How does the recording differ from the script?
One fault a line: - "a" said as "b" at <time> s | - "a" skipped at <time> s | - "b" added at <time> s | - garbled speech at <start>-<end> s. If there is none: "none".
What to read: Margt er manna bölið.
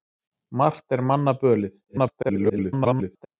- garbled speech at 1.9-3.3 s